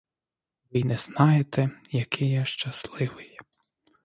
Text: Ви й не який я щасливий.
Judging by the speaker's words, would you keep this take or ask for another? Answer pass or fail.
fail